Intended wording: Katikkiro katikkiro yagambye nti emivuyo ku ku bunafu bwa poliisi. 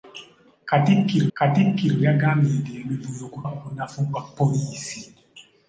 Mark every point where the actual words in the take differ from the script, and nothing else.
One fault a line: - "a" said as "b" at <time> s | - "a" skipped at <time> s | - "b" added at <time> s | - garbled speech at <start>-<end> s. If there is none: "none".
none